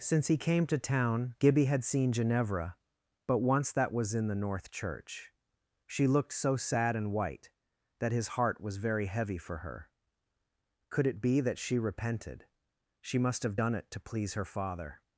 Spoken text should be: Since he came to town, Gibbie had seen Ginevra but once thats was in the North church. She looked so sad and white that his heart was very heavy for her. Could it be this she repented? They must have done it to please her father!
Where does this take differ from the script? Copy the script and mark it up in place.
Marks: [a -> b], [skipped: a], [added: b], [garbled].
Since he came to town, Gibbie had seen Ginevra but once [thats -> that] was in the North church. She looked so sad and white that his heart was very heavy for her. Could it be [this -> that] she repented? [They -> She] must have done it to please her father!